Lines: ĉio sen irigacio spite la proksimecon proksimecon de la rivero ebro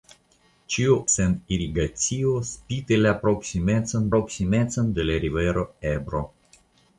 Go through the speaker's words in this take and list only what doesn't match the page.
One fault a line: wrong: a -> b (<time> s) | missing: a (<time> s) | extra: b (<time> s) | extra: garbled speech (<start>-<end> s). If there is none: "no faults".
no faults